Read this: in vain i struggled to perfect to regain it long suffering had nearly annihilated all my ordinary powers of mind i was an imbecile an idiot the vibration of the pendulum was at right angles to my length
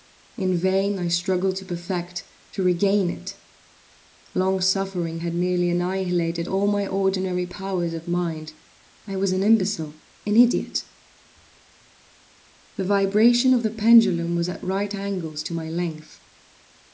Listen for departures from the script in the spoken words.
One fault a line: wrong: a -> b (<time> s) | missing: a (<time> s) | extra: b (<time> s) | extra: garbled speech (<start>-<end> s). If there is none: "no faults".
no faults